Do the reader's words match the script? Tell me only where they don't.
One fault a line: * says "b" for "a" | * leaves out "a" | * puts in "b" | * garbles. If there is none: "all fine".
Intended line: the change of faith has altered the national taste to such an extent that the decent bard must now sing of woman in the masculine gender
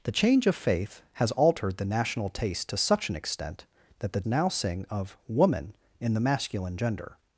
* leaves out "decent bard must"